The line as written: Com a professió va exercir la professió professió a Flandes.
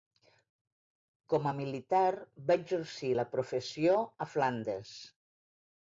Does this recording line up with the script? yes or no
no